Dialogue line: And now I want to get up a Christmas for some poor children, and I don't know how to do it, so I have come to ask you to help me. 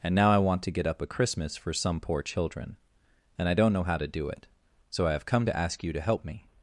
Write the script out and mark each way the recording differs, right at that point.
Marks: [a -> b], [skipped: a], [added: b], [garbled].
And now I want to get up a Christmas for some poor children, and I don't know how to do it, so I have come to ask you to help me.